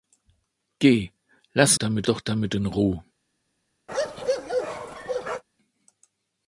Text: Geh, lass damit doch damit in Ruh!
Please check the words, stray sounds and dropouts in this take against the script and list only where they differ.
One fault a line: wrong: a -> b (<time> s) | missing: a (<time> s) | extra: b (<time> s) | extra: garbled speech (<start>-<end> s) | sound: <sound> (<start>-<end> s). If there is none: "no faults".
sound: bark (3.9-5.4 s)